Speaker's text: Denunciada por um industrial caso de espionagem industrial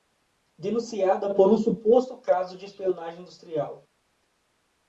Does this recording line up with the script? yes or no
no